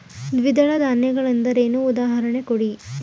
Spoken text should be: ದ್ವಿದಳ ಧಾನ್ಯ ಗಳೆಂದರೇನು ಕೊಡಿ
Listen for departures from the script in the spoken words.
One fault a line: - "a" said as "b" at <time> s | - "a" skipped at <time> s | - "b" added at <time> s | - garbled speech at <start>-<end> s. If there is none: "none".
- "ಉದಾಹರಣೆ" added at 1.9 s